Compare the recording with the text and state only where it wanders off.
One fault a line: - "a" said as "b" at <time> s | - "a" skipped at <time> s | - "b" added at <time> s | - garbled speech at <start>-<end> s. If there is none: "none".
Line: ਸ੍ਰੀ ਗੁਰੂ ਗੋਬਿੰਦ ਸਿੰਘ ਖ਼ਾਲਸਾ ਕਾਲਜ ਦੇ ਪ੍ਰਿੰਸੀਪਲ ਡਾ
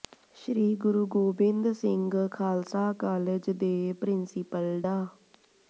none